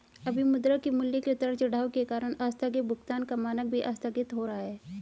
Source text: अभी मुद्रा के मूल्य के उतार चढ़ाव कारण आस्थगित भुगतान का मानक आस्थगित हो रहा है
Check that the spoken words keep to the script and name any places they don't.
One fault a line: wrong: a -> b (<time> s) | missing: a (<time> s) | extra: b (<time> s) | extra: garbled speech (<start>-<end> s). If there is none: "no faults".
extra: के (1.9 s)
extra: भी (3.7 s)